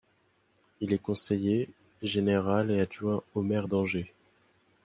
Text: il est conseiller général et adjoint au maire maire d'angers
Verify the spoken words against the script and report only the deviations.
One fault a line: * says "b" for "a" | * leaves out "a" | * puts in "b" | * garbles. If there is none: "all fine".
* leaves out "maire"